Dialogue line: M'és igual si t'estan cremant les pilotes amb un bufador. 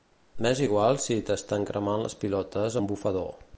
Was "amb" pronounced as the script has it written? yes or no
no